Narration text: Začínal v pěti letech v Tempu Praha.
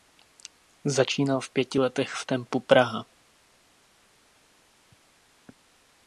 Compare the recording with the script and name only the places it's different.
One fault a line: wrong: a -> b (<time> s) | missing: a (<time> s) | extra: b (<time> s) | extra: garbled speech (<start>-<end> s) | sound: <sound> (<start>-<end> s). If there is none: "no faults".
no faults